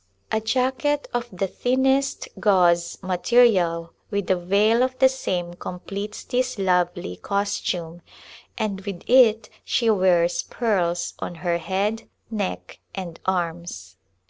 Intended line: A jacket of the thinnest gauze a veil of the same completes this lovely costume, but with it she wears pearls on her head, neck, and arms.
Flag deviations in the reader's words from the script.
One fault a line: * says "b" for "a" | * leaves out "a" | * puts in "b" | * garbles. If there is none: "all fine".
* puts in "material with"
* says "and" for "but"